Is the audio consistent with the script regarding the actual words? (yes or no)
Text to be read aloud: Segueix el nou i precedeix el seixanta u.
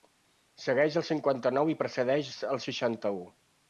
no